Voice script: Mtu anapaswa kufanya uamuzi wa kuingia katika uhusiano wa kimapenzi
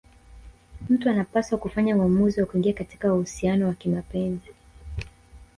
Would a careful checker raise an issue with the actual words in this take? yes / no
no